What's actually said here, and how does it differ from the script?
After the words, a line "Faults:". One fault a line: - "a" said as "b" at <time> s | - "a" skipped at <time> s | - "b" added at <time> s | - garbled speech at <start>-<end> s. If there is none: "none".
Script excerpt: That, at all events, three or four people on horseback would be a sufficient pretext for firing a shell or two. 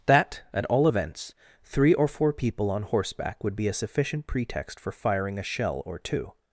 That, at all events, three or four people on horseback would be a sufficient pretext for firing a shell or two.
Faults:
none